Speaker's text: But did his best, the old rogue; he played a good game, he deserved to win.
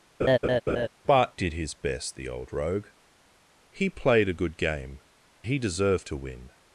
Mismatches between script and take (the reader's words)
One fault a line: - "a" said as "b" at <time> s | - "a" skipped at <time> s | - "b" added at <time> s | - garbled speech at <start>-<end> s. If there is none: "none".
none